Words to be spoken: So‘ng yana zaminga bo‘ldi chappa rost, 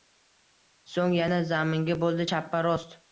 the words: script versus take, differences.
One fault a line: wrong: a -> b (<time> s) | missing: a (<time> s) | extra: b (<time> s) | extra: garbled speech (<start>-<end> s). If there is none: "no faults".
no faults